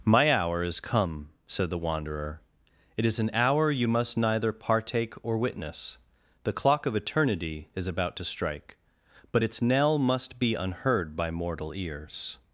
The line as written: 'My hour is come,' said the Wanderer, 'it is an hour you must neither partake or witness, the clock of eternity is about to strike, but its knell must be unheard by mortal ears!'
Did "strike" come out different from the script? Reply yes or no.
no